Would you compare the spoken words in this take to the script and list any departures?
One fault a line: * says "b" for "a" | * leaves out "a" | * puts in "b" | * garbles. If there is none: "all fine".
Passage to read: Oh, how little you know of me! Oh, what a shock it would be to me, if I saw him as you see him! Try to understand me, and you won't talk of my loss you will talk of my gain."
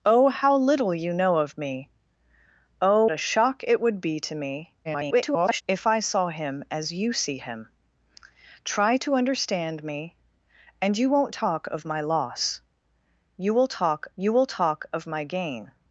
* leaves out "what"
* garbles
* puts in "you will talk"